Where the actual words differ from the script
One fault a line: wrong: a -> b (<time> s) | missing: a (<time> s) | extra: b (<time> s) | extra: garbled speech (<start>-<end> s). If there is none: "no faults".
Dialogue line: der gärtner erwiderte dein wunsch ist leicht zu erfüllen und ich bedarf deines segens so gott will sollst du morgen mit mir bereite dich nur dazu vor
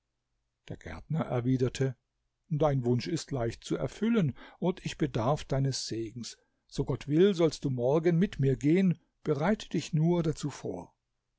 extra: gehen (8.5 s)